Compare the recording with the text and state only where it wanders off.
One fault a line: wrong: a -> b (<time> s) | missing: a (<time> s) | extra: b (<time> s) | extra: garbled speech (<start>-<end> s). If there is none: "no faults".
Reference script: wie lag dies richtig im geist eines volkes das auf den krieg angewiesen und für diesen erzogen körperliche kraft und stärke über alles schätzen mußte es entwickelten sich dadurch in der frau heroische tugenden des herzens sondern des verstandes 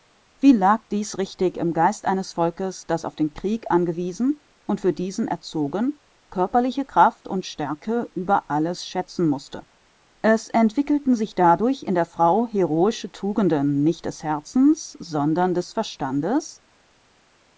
extra: nicht (13.8 s)